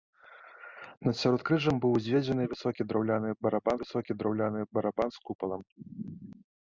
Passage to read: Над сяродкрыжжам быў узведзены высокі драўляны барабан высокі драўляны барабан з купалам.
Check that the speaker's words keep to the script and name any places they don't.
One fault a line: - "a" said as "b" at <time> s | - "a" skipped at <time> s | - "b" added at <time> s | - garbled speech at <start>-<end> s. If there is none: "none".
none